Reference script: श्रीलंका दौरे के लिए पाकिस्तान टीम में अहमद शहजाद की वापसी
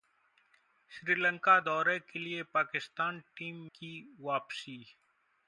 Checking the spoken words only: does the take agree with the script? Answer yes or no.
no